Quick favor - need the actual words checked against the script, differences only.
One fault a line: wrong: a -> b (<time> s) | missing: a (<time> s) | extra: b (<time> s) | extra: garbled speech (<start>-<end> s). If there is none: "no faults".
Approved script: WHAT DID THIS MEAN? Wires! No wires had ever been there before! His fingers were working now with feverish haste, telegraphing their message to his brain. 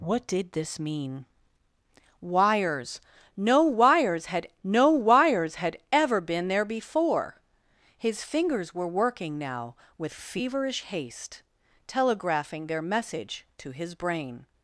extra: no wires had (4.6 s)